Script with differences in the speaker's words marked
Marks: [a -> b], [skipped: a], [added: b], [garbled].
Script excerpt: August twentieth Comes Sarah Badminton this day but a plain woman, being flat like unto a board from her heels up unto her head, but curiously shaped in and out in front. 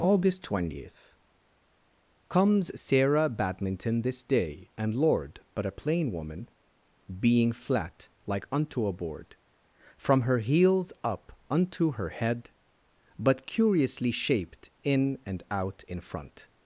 August twentieth Comes Sarah Badminton this day [added: and Lord] but a plain woman, being flat like unto a board from her heels up unto her head, but curiously shaped in and out in front.